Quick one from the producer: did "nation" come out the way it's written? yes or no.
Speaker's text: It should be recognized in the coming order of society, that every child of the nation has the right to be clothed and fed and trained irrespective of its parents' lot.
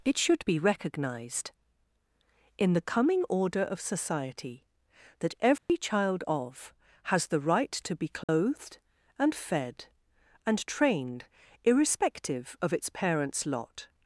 no